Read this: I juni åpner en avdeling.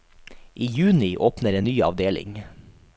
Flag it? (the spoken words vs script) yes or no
yes